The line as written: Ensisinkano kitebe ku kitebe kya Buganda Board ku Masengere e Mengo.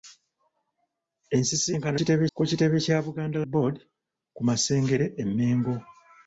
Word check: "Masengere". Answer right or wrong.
right